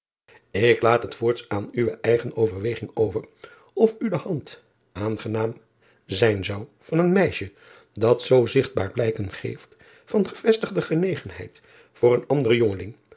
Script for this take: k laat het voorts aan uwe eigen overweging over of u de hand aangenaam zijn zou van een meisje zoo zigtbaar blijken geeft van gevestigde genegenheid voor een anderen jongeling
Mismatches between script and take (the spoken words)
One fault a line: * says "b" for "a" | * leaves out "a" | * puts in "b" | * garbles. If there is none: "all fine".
* puts in "dat"